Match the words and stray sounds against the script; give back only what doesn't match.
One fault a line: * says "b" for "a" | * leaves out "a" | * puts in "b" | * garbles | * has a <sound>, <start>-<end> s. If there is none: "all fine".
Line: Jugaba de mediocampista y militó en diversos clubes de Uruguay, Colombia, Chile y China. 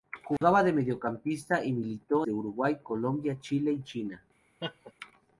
* has a dropout, 0.4-0.4 s
* leaves out "en diversos clubes"
* has a laugh, 4.6-4.9 s